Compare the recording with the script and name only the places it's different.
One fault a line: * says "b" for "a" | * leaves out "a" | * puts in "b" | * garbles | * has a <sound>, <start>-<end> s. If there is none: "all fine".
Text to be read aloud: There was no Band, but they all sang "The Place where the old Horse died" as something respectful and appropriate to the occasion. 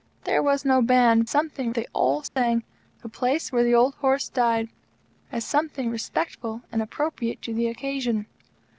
* says "something" for "but"
* has a dropout, 2.3-2.4 s